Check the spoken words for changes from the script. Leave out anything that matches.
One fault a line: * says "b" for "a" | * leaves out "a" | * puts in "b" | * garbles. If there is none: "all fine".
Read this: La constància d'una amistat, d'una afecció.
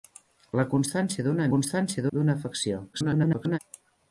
* says "constància" for "amistat"
* garbles